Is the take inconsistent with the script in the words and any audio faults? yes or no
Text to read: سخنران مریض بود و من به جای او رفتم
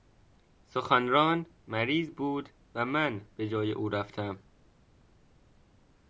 no